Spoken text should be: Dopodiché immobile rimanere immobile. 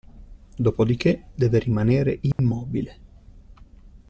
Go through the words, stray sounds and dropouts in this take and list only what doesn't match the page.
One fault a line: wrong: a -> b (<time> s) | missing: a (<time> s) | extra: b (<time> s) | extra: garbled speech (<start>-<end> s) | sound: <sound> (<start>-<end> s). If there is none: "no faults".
wrong: immobile -> deve (1.4 s)
sound: dropout (2.3-2.4 s)